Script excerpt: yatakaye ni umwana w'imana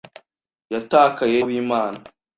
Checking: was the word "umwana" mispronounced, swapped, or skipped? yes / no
yes